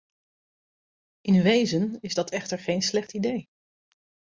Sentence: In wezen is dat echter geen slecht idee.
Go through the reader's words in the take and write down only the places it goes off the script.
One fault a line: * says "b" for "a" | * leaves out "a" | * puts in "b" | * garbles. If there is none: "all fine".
all fine